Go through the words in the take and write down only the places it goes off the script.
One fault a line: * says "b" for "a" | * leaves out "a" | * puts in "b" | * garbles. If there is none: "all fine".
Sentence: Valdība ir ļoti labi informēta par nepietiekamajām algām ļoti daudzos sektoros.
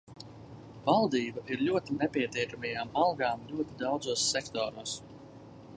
* leaves out "labi informēta par"